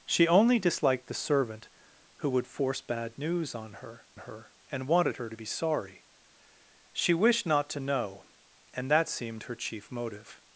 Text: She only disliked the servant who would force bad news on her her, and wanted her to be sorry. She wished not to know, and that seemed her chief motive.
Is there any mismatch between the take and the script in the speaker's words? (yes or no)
no